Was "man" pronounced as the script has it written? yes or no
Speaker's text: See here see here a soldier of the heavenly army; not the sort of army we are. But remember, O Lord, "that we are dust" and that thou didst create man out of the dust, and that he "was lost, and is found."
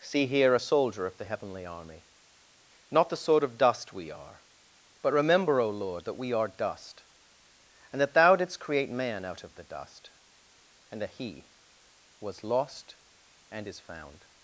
yes